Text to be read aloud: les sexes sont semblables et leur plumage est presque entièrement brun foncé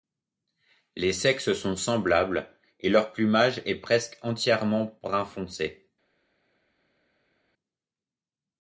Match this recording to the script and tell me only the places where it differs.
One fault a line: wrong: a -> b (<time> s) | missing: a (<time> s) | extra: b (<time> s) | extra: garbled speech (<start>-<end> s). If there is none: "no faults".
no faults